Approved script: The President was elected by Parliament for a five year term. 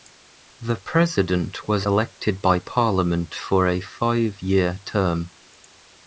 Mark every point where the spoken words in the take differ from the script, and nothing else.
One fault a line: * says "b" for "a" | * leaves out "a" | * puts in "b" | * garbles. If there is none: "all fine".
all fine